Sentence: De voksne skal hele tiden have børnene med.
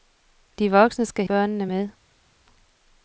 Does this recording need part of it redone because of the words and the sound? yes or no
yes